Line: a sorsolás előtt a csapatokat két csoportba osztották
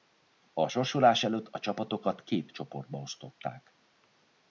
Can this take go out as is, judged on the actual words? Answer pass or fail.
pass